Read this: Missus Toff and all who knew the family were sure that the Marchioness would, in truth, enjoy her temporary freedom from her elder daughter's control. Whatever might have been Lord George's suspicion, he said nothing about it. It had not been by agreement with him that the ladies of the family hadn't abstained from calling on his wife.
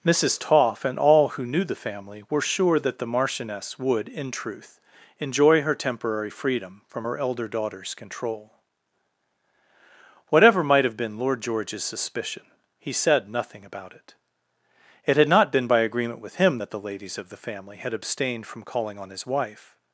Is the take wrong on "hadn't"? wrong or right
wrong